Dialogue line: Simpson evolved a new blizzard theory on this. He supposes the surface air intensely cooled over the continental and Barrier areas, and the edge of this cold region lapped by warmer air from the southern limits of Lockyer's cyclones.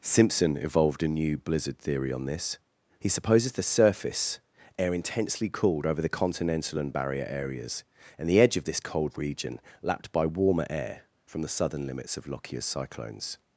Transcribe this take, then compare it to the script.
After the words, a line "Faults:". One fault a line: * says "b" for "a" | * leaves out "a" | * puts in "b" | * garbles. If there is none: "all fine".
Simpson evolved a new blizzard theory on this. He supposes the surface air intensely cooled over the continental and Barrier areas, and the edge of this cold region lapped by warmer air from the southern limits of Lockyer's cyclones.
Faults:
all fine